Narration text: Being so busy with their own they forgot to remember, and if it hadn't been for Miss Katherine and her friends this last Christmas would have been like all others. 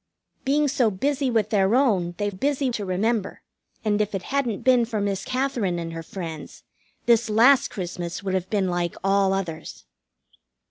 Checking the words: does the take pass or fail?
fail